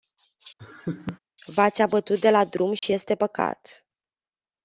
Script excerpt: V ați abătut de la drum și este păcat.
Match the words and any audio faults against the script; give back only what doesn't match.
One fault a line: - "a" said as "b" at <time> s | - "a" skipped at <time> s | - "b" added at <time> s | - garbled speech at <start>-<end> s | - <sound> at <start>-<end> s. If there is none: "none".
- laugh at 0.6-1.2 s
- dropout at 2.8-2.8 s